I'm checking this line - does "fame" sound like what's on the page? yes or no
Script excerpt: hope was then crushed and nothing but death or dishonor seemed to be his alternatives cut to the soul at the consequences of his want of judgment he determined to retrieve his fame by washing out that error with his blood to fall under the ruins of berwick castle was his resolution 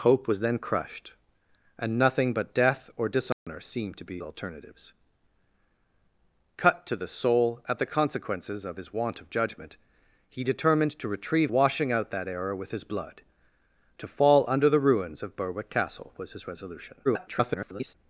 no